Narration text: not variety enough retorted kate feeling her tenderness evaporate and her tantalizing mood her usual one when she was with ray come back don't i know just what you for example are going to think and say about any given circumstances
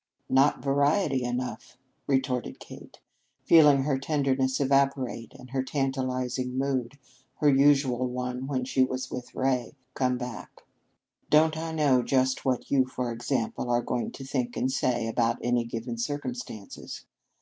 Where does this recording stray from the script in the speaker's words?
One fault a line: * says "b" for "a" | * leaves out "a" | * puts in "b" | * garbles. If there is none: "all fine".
all fine